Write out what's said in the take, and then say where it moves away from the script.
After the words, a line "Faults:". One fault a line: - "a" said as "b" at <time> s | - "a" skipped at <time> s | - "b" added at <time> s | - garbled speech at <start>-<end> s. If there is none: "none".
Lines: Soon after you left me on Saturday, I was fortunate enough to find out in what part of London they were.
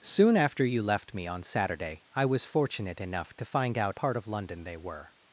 Soon after you left me on Saturday, I was fortunate enough to find out part of London they were.
Faults:
- "in what" skipped at 4.0 s